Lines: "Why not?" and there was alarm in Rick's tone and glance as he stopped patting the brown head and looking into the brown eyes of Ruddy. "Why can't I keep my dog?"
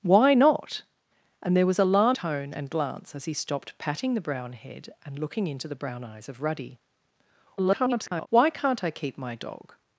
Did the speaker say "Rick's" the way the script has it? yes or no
no